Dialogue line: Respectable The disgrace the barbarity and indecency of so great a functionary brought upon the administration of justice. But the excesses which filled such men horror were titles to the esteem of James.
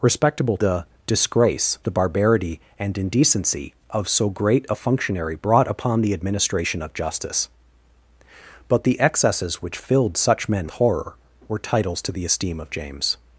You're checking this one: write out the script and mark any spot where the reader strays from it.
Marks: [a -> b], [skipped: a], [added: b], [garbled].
Respectable The disgrace the barbarity and indecency of so great a functionary brought upon the administration of justice. But the excesses which filled such men horror were titles to the esteem of James.